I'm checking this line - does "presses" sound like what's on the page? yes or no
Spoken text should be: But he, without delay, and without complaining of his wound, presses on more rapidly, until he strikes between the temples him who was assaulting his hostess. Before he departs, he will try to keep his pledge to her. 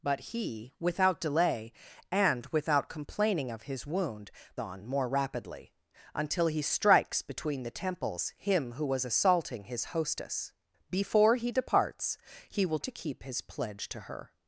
no